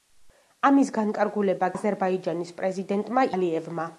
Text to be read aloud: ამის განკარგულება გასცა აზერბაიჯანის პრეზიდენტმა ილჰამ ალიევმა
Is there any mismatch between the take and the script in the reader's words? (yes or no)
yes